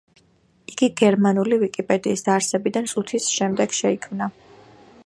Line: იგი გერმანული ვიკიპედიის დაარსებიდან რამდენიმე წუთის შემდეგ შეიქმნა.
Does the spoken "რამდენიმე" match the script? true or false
false